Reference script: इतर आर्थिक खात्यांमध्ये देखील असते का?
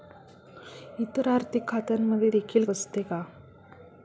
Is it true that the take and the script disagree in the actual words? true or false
false